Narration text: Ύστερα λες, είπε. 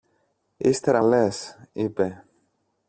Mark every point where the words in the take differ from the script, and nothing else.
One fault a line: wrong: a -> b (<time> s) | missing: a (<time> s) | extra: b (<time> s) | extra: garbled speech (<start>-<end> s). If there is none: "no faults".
no faults